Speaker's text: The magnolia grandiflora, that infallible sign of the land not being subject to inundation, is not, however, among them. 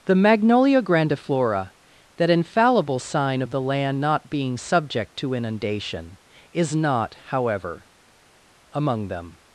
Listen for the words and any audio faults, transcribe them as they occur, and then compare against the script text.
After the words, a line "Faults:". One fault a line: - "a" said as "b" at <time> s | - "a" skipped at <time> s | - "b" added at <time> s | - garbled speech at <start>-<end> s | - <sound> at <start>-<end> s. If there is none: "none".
The magnolia grandiflora, that infallible sign of the land not being subject to inundation, is not, however, among them.
Faults:
none